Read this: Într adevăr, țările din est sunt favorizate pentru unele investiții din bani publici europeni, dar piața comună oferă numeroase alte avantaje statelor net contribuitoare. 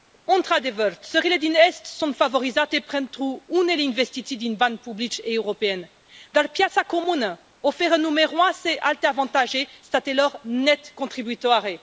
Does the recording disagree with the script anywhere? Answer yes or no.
no